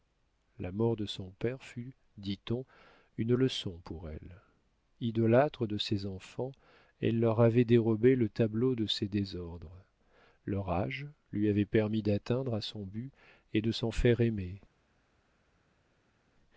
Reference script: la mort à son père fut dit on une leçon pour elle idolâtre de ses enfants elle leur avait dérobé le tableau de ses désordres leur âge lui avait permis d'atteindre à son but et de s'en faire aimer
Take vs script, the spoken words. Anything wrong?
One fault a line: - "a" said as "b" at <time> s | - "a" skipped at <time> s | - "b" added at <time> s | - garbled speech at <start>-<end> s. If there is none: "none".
- "à" said as "de" at 0.9 s